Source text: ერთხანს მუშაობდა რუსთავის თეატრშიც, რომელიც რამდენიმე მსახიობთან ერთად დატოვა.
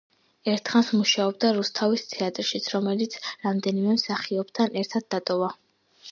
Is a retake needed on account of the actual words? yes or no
no